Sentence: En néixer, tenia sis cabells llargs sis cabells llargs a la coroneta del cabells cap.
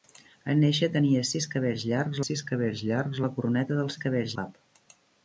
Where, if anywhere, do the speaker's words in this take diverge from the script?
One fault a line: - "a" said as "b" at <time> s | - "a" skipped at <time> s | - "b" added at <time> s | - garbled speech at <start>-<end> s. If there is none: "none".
none